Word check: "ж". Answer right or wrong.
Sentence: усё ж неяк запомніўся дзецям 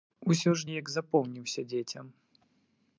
right